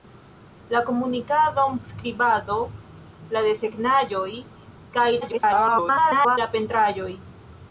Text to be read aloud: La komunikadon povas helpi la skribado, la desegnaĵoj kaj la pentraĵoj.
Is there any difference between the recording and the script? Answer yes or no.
yes